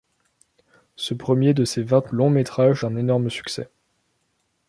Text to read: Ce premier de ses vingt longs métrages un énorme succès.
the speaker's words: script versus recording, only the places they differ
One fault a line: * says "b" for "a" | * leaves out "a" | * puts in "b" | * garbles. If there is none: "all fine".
all fine